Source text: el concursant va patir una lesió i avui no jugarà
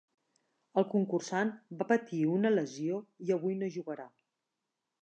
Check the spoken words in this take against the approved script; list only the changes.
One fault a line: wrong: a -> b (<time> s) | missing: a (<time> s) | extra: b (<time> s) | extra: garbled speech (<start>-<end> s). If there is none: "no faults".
no faults